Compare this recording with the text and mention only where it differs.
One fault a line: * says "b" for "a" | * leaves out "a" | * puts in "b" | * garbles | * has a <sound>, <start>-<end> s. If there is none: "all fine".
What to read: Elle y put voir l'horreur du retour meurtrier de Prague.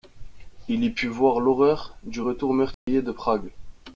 * says "Il" for "Elle"
* has a dropout, 2.7-2.9 s